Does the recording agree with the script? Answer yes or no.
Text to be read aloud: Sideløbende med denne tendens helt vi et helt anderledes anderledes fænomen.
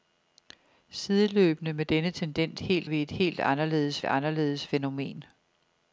yes